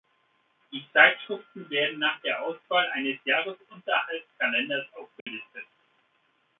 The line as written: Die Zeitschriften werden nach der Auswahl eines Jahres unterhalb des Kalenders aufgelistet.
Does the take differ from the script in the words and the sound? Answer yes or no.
yes